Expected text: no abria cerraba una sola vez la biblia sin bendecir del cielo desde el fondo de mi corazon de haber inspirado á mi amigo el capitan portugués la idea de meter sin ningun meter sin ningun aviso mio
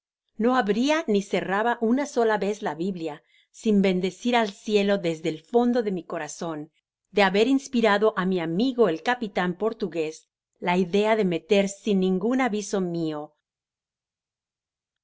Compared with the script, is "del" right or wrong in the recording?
wrong